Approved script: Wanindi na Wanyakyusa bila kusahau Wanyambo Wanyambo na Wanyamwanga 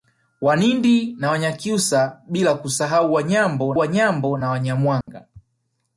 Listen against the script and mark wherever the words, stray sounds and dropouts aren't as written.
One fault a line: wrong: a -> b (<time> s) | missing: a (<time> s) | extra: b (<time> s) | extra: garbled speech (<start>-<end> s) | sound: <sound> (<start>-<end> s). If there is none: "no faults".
sound: dropout (5.0-5.1 s)